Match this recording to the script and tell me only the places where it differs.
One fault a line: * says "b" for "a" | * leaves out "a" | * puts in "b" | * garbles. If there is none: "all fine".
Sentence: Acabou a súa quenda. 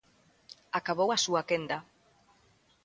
all fine